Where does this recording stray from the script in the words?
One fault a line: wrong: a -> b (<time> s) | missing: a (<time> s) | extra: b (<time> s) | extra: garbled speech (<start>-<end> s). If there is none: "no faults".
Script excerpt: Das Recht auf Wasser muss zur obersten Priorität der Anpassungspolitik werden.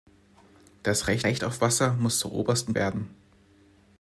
extra: Recht (1.2 s)
missing: Priorität der Anpassungspolitik (2.7 s)